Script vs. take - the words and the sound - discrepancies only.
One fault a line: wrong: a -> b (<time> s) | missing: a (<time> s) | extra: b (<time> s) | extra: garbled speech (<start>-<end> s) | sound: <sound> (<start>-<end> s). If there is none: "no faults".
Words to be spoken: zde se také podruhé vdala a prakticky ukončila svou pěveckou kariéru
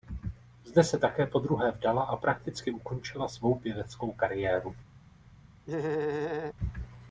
sound: laugh (5.7-6.5 s)